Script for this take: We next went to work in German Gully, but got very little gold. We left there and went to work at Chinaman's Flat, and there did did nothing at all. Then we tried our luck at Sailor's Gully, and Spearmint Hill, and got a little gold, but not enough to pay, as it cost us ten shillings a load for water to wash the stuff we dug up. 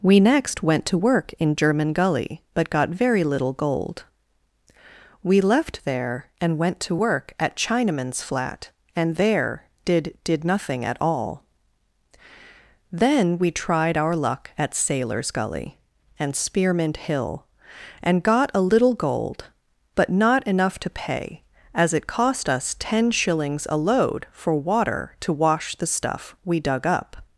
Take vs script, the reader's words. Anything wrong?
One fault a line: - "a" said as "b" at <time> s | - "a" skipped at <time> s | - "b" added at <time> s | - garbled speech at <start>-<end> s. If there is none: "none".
none